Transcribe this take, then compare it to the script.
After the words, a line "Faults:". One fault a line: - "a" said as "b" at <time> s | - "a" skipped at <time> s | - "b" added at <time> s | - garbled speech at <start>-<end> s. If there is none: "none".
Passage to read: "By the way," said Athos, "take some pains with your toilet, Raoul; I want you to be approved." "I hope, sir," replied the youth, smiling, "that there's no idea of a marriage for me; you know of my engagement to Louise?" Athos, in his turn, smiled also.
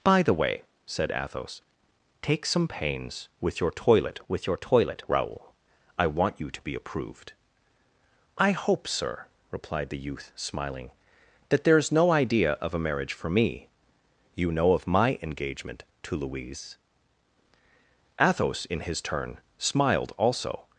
"By the way," said Athos, "take some pains with your toilet with your toilet, Raoul; I want you to be approved." "I hope, sir," replied the youth, smiling, "that there's no idea of a marriage for me; you know of my engagement to Louise?" Athos, in his turn, smiled also.
Faults:
- "with your toilet" added at 4.3 s